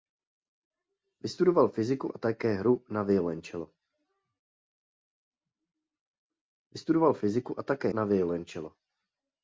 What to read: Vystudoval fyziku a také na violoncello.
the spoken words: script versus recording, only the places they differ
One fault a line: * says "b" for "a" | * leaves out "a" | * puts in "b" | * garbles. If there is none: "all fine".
all fine